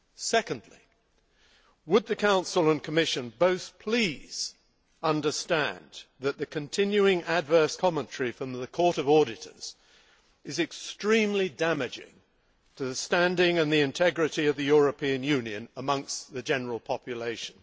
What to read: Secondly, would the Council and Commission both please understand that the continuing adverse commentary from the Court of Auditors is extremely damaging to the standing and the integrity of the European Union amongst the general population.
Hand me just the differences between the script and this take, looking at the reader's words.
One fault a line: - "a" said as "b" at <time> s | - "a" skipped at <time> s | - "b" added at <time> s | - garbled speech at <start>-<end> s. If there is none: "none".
none